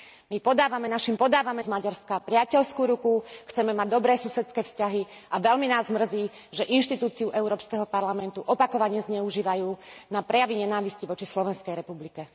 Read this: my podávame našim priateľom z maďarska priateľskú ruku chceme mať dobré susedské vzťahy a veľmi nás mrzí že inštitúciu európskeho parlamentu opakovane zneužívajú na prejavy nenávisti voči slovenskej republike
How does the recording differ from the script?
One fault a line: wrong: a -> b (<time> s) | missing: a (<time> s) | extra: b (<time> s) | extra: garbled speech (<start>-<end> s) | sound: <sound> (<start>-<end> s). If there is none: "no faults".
wrong: priateľom -> podávame (1.1 s)